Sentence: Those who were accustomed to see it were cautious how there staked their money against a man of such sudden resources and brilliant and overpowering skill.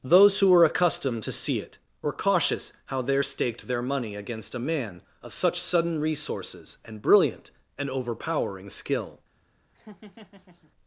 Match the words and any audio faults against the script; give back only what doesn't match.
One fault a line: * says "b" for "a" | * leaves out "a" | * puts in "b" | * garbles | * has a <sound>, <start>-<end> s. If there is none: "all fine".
* has a laugh, 9.7-10.7 s